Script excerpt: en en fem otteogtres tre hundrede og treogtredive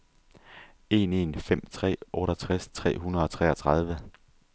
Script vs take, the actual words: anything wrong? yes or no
yes